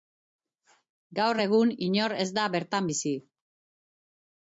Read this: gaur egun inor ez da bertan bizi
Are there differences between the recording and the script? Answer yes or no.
no